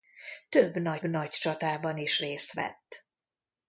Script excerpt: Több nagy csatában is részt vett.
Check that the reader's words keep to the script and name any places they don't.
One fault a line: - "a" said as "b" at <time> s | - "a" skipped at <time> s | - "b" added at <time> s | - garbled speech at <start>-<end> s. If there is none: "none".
- "nagy" added at 1.0 s